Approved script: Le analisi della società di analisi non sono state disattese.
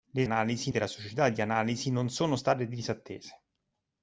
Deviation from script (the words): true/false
false